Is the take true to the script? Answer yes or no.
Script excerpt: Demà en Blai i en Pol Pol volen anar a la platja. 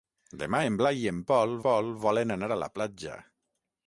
yes